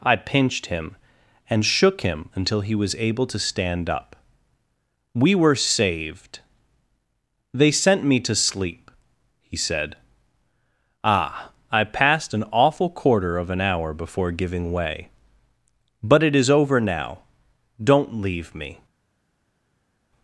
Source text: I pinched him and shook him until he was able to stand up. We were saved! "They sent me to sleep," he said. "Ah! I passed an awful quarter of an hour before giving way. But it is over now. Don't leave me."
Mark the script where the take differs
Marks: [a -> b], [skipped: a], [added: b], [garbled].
I pinched him and shook him until he was able to stand up. We were saved! "They sent me to sleep," he said. "Ah! I passed an awful quarter of an hour before giving way. But it is over now. Don't leave me."